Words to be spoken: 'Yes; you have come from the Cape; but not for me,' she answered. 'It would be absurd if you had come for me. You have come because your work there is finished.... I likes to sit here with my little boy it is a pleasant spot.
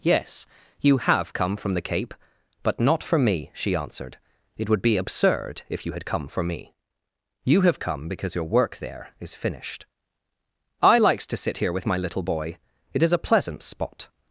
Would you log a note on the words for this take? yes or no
no